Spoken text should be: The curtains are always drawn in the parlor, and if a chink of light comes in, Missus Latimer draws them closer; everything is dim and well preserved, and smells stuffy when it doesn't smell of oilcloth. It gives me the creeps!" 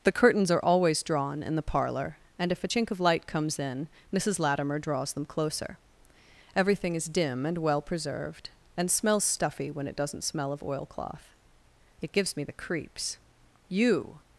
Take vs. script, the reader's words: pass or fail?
fail